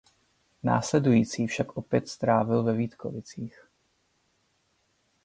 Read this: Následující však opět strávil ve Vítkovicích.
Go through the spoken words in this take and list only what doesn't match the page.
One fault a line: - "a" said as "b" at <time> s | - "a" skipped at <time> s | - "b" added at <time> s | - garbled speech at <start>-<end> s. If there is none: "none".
none